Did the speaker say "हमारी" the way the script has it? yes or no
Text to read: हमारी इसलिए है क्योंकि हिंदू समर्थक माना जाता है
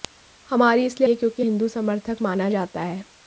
yes